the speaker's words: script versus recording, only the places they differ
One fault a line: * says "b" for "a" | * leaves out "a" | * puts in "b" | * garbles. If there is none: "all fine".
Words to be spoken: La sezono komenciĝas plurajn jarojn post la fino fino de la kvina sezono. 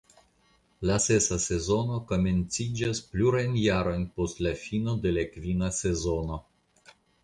* puts in "sesa"
* leaves out "fino"